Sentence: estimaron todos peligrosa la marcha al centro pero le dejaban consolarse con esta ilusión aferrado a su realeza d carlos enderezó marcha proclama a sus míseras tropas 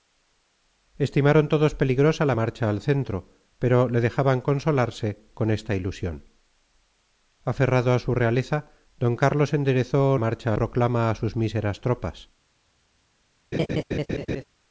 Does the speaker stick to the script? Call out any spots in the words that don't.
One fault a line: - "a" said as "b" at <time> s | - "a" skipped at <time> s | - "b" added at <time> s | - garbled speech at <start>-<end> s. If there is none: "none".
none